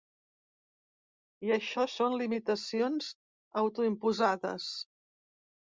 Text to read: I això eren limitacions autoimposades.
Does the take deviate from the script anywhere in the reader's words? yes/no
yes